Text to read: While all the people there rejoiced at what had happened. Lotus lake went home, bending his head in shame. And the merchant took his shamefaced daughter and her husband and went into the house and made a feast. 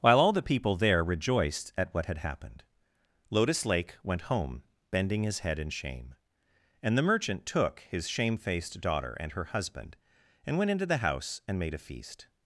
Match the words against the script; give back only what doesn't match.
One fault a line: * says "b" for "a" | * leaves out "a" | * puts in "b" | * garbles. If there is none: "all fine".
all fine